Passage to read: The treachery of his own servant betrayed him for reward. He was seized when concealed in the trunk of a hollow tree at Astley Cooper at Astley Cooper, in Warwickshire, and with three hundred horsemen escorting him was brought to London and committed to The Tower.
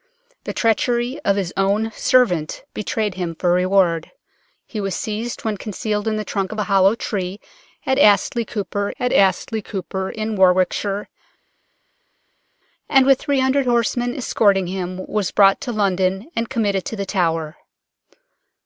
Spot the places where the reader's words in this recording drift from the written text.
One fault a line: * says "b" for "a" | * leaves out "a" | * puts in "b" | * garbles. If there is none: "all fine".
all fine